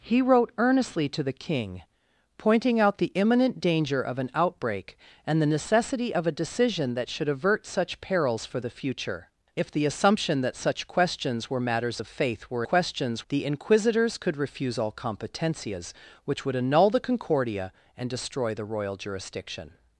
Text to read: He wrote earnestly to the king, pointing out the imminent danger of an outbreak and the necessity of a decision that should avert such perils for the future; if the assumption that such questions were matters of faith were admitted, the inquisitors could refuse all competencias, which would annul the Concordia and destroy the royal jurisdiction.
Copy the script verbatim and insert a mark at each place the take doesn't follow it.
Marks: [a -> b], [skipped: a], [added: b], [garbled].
He wrote earnestly to the king, pointing out the imminent danger of an outbreak and the necessity of a decision that should avert such perils for the future; if the assumption that such questions were matters of faith were [admitted, -> questions] the inquisitors could refuse all competencias, which would annul the Concordia and destroy the royal jurisdiction.